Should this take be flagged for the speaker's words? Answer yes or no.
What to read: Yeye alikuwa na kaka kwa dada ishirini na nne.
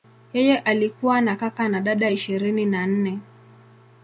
yes